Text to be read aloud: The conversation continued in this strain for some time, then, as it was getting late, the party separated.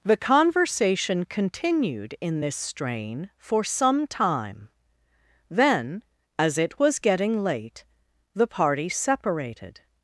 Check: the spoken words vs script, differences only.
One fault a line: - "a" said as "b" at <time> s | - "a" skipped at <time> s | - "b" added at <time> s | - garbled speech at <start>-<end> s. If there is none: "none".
none